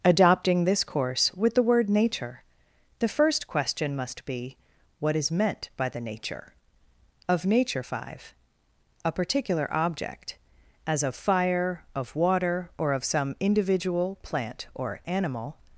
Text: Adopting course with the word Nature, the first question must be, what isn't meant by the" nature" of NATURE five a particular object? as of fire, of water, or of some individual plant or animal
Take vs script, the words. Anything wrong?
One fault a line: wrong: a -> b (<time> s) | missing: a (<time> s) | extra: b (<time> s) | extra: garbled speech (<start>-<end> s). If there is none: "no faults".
extra: this (0.7 s)
wrong: isn't -> is (5.2 s)